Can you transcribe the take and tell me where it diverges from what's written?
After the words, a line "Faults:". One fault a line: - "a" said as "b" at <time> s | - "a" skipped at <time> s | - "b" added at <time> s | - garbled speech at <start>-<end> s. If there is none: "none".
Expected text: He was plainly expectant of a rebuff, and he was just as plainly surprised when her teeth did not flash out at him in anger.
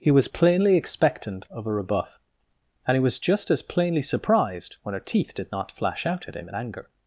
He was plainly expectant of a rebuff, and he was just as plainly surprised when her teeth did not flash out at him in anger.
Faults:
none